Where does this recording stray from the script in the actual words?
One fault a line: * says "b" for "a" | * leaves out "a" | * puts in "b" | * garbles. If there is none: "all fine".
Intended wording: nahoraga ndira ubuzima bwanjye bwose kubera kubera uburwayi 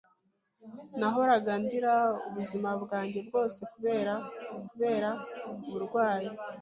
all fine